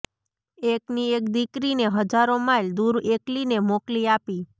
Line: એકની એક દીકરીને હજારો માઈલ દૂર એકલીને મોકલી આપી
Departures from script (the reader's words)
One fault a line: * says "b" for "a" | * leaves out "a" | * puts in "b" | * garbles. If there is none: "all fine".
all fine